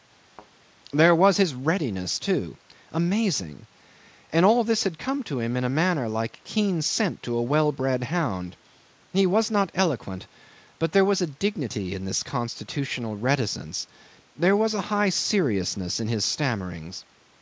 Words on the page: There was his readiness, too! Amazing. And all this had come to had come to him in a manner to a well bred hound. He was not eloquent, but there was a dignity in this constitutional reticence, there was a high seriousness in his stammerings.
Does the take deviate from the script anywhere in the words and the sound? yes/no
yes